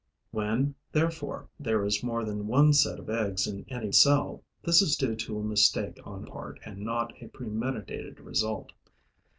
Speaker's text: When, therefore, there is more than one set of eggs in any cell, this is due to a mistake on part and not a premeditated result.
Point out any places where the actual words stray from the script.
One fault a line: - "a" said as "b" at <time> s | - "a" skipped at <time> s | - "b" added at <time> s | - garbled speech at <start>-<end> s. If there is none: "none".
none